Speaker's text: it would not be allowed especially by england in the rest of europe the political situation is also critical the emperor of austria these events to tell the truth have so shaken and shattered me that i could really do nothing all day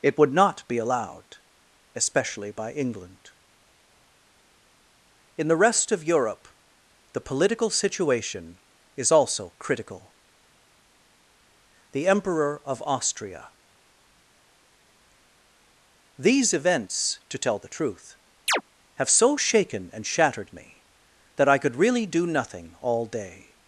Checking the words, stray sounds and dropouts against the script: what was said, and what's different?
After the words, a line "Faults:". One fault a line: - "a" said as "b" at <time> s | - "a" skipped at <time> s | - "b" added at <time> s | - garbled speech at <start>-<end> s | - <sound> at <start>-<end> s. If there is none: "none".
it would not be allowed especially by england in the rest of europe the political situation is also critical the emperor of austria these events to tell the truth have so shaken and shattered me that i could really do nothing all day
Faults:
- chirp at 18.5-18.6 s